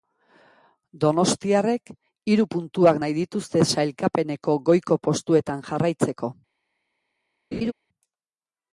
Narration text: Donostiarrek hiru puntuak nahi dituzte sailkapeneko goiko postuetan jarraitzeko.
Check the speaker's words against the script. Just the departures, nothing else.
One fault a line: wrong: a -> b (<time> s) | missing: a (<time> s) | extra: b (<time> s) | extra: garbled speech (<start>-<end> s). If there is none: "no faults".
no faults